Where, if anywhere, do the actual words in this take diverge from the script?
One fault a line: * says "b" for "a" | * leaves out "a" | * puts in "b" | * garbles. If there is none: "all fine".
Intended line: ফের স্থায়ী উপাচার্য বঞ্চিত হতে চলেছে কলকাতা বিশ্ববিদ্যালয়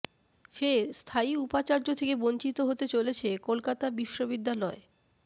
* puts in "থেকে"